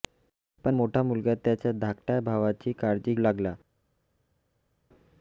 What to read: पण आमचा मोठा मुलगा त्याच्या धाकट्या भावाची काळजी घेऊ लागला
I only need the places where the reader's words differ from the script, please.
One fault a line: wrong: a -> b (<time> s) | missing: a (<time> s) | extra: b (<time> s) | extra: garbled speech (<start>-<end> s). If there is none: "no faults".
missing: आमचा (0.8 s)
missing: घेऊ (3.1 s)